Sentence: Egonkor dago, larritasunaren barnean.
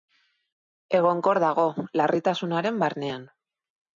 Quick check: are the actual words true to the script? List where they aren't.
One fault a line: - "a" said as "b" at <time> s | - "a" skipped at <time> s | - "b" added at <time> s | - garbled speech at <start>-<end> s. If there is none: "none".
none